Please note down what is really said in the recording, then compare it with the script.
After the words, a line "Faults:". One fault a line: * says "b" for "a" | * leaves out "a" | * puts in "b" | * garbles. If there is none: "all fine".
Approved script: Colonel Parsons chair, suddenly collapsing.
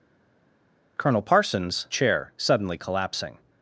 Colonel Parsons chair, suddenly collapsing.
Faults:
all fine